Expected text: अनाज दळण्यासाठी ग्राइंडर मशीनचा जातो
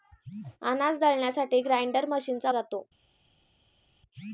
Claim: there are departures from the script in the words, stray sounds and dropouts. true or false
false